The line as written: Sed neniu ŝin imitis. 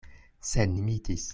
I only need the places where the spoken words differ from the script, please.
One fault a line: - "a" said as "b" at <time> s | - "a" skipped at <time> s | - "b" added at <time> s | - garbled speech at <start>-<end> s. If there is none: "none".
- "neniu ŝin" skipped at 0.7 s